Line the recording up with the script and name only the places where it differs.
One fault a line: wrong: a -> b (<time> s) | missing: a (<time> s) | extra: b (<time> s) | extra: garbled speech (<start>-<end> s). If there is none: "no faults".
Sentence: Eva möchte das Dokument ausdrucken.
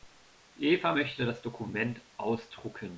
no faults